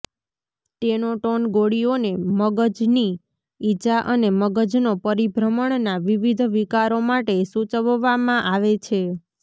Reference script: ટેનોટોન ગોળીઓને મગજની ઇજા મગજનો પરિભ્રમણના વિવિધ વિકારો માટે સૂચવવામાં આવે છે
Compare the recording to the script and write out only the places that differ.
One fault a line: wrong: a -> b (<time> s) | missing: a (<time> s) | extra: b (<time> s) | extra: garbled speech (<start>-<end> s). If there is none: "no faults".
extra: અને (4.1 s)